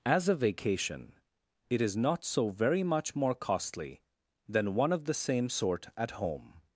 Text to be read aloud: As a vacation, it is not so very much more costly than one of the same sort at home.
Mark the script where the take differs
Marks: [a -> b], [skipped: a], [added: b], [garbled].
As a vacation, it is not so very much more costly than one of the same sort at home.